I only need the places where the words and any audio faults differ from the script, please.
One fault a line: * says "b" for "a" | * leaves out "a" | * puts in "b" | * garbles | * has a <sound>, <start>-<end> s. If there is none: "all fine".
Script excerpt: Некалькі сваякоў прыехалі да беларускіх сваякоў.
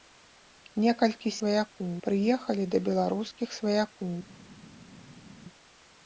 all fine